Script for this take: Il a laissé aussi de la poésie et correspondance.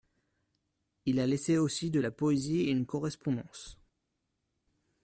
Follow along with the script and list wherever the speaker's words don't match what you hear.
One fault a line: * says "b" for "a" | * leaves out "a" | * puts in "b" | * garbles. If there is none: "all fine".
* puts in "une"